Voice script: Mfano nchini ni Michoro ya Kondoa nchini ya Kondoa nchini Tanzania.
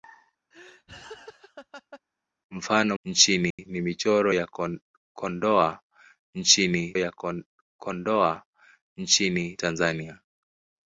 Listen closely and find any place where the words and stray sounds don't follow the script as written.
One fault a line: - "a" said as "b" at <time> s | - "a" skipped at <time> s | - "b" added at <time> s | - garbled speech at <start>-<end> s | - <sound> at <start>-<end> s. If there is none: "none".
- laugh at 0.5-2.0 s
- dropout at 3.5-3.6 s